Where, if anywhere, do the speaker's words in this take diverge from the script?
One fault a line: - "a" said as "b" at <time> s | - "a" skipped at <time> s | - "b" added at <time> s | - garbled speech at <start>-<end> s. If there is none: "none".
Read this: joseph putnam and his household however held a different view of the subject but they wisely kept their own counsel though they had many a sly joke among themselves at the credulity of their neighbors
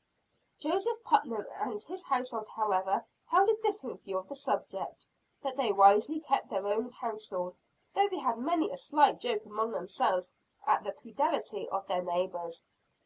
none